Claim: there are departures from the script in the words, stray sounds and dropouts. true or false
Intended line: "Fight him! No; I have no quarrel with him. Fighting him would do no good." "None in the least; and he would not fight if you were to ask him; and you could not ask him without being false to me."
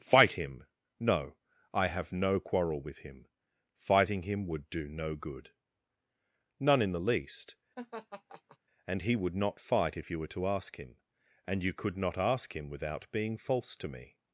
true